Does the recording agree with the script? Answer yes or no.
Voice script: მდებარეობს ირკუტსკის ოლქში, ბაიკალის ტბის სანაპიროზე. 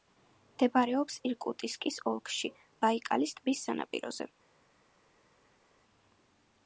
yes